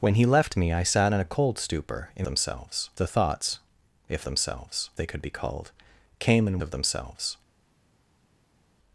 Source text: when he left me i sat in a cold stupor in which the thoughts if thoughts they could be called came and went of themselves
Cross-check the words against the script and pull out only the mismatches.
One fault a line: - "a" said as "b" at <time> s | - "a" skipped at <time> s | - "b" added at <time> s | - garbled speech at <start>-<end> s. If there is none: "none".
- "which" said as "themselves" at 2.2 s
- "thoughts" said as "themselves" at 4.2 s
- "went" skipped at 6.6 s